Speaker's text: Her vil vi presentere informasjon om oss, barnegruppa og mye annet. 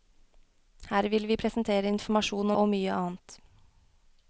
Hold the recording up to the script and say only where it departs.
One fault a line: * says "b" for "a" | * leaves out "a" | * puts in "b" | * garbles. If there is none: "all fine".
* leaves out "om oss barnegruppa"